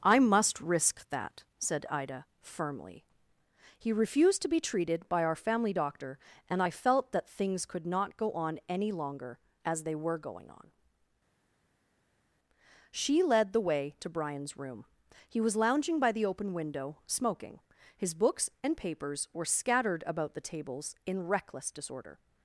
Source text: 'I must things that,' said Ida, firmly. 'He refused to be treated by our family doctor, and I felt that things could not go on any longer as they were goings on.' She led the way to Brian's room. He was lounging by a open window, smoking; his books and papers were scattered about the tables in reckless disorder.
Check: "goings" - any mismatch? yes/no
yes